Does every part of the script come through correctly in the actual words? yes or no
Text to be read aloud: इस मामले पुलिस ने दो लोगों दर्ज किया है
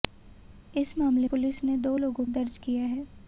yes